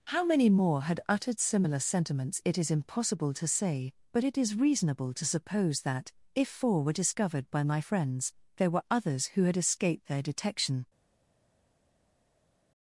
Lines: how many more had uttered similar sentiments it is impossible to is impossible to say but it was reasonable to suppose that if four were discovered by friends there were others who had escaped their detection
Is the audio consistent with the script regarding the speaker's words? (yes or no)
no